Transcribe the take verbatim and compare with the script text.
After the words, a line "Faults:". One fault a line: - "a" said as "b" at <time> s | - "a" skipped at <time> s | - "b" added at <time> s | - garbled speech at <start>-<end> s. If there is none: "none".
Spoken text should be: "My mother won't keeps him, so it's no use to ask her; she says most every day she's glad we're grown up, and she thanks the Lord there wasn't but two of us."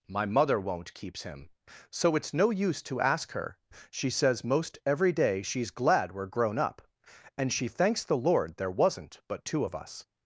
"My mother won't keeps him, so it's no use to ask her; she says most every day she's glad we're grown up, and she thanks the Lord there wasn't but two of us."
Faults:
none